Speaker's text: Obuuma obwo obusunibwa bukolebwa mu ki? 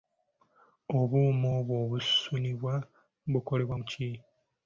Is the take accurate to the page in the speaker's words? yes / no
yes